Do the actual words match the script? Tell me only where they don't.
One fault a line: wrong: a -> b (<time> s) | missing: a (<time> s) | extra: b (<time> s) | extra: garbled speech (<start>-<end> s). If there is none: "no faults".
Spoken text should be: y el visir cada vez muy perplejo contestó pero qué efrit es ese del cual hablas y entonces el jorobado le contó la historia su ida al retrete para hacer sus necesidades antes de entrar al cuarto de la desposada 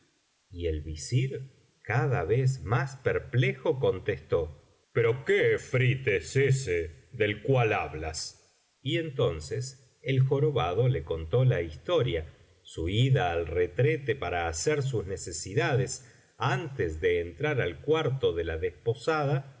wrong: muy -> más (2.6 s)